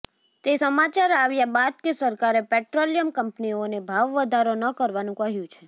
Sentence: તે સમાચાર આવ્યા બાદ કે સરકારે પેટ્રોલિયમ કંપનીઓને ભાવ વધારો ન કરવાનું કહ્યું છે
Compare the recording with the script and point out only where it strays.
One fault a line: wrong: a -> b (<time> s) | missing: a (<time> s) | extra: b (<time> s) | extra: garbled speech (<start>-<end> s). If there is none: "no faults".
no faults